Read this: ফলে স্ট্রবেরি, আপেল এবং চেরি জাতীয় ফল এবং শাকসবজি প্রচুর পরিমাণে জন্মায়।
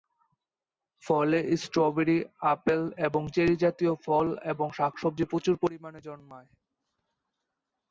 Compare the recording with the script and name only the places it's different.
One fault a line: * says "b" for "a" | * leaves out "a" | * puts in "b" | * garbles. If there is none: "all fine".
all fine